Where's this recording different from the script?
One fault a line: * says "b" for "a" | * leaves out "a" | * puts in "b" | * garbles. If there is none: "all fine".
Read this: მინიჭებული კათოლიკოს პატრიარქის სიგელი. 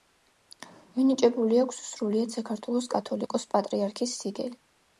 * puts in "აქვს სრულიად საქართველოს"